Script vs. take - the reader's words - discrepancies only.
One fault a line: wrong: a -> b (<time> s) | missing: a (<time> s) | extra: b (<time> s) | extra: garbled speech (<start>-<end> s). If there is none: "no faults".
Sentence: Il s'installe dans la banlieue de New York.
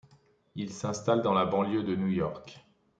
no faults